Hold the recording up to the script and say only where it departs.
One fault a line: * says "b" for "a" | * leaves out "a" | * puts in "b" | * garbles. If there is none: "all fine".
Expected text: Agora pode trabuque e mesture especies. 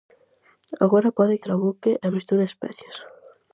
all fine